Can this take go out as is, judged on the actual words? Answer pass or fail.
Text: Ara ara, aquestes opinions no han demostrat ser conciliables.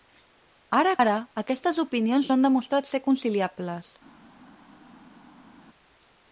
pass